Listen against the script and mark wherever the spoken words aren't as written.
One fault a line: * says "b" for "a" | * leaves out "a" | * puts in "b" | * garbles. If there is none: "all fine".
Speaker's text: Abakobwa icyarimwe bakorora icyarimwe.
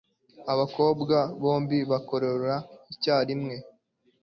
* says "bombi" for "icyarimwe"